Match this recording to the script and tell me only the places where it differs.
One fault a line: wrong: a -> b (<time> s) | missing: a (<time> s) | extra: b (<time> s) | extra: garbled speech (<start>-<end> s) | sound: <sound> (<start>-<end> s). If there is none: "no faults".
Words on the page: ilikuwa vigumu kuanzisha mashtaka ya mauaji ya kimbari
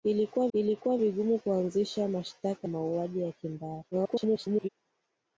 extra: ilikuwa (0.5 s)
missing: ya (2.7 s)
extra: garbled speech (3.9-4.7 s)